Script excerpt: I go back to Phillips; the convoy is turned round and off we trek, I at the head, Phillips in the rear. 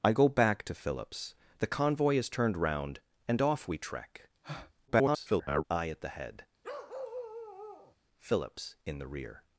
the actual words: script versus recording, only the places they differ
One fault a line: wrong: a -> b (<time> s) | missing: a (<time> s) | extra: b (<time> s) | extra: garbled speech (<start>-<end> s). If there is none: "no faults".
extra: garbled speech (4.9-5.6 s)